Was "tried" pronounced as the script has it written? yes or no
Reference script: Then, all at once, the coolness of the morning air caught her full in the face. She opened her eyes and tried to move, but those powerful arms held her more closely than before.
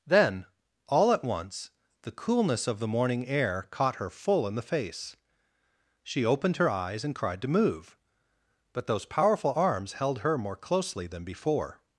no